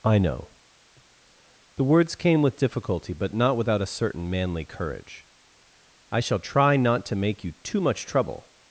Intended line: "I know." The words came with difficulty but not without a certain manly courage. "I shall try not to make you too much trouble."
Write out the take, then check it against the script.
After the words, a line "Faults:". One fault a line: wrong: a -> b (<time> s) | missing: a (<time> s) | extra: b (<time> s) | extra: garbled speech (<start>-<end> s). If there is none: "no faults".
"I know." The words came with difficulty but not without a certain manly courage. "I shall try not to make you too much trouble."
Faults:
no faults